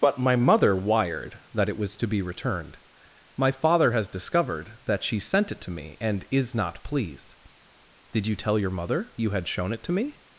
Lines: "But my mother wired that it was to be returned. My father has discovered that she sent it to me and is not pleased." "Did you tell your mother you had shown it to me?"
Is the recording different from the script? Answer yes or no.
no